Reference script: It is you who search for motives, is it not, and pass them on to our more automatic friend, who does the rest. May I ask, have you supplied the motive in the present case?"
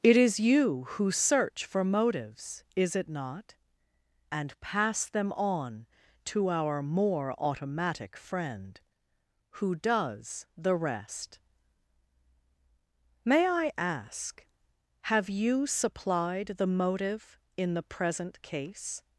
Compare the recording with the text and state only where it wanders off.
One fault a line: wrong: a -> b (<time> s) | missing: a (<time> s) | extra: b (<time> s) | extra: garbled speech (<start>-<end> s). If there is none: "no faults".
no faults